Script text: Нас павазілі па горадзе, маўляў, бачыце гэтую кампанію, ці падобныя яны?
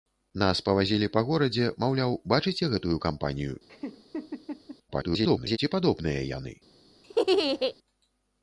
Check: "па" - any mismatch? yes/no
no